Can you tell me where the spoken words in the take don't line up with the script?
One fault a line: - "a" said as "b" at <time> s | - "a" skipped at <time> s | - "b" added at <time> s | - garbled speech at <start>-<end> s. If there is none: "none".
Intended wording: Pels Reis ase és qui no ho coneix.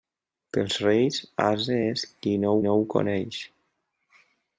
- "no" added at 2.7 s